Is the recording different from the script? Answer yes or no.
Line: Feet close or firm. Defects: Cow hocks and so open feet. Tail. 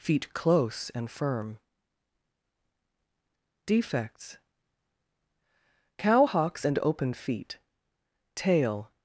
yes